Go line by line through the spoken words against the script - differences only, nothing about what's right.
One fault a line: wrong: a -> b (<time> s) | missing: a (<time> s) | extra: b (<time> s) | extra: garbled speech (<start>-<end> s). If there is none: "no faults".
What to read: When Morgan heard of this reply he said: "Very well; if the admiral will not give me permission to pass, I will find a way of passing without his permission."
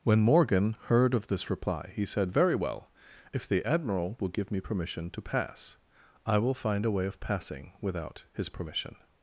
missing: not (4.3 s)